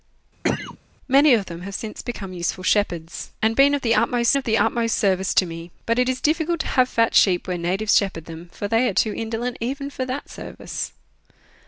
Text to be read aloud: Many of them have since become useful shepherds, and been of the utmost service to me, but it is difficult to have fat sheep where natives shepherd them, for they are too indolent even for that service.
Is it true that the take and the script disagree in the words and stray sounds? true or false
true